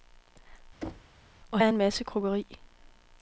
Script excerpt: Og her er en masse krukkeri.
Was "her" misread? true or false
true